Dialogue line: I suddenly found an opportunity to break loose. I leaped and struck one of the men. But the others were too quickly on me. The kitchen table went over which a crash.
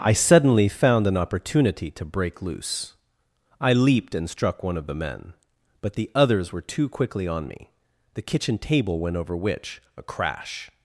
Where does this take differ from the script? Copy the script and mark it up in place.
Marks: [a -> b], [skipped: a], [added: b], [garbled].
I suddenly found an opportunity to break loose. I leaped and struck one of the men. But the others were too quickly on me. The kitchen table went over which a crash.